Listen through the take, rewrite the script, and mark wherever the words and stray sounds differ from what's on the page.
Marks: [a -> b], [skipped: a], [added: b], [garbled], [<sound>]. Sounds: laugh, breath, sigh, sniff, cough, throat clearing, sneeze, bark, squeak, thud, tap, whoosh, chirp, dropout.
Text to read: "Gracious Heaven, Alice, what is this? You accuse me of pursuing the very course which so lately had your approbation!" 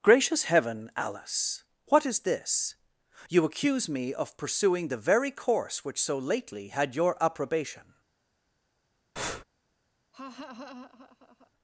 "Gracious Heaven, Alice, what is this? You accuse me of pursuing the very course which so lately had your approbation!" [breath] [laugh]